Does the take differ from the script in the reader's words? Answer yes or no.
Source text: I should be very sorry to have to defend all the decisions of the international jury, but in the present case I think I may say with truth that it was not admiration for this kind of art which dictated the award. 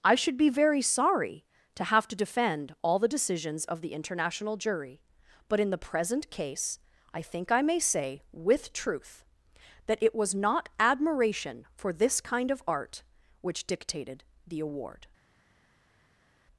no